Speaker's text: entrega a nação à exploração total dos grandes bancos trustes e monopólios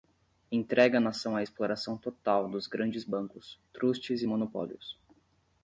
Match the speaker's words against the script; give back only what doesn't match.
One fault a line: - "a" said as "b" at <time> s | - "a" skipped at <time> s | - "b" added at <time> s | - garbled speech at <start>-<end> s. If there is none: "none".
none